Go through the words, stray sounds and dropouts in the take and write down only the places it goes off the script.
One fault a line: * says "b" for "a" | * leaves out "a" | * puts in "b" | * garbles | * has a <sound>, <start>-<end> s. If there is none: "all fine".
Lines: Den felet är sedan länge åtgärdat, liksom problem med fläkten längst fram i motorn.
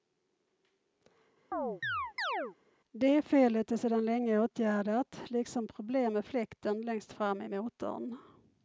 * has a chirp, 1.5-2.6 s
* says "Det" for "Den"